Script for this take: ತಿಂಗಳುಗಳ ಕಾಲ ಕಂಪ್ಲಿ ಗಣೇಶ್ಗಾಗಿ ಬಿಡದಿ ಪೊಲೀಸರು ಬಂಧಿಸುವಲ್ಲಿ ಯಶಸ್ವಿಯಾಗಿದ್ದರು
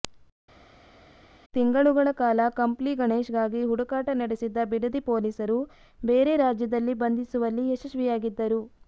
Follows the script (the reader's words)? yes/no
no